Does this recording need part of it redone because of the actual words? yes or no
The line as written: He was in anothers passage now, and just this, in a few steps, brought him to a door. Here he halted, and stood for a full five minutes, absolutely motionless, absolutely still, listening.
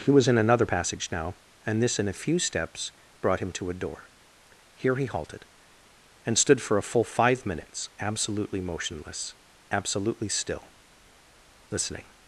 yes